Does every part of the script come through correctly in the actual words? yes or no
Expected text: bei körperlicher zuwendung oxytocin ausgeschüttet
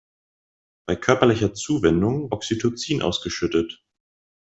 yes